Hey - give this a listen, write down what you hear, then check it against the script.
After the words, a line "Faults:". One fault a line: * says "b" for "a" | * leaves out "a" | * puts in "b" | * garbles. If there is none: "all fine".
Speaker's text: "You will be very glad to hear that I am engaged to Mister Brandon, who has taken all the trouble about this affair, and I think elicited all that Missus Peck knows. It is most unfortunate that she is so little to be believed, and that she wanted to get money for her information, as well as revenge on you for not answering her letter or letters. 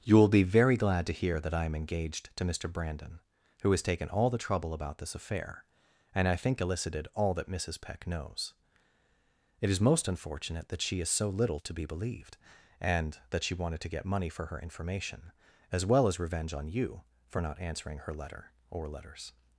"You will be very glad to hear that I am engaged to Mister Brandon, who has taken all the trouble about this affair, and I think elicited all that Missus Peck knows. It is most unfortunate that she is so little to be believed, and that she wanted to get money for her information, as well as revenge on you for not answering her letter or letters.
Faults:
all fine